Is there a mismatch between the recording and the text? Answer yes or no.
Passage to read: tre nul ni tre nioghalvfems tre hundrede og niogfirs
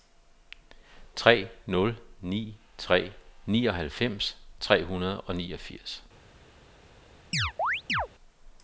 no